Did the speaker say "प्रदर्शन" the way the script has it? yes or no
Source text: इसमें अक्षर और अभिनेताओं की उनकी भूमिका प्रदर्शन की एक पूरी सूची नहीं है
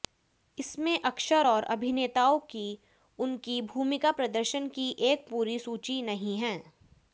yes